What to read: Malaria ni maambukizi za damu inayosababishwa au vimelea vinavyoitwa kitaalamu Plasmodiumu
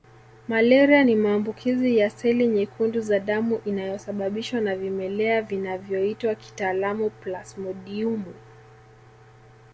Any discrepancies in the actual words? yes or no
yes